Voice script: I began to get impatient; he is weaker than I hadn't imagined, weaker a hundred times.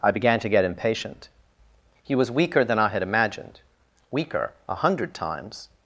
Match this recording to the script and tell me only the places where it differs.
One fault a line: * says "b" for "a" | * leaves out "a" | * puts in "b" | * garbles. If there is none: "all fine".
* says "was" for "is"
* says "had" for "hadn't"